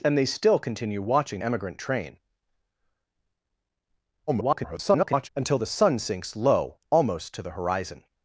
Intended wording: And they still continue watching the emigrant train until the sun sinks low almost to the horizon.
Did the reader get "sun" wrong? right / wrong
right